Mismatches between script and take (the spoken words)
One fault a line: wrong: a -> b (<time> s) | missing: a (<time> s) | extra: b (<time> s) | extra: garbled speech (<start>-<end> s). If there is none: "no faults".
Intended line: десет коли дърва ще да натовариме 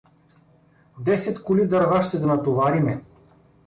no faults